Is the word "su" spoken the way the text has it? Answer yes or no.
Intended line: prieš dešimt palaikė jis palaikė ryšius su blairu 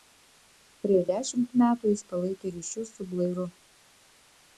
yes